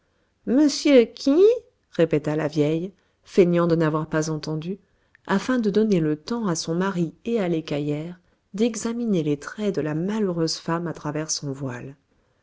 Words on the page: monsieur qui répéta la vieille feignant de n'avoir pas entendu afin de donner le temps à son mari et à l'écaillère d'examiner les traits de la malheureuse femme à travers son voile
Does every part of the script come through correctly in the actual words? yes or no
yes